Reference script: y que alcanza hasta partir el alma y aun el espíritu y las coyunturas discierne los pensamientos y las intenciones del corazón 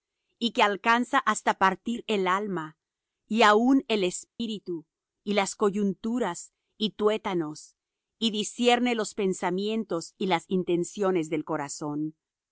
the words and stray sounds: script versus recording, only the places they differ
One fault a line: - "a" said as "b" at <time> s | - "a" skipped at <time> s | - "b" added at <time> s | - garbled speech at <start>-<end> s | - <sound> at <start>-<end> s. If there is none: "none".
- dropout at 4.3-4.4 s
- "y tuétanos y" added at 6.8 s